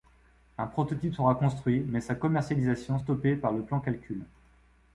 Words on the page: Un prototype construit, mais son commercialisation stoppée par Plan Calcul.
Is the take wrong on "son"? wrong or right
wrong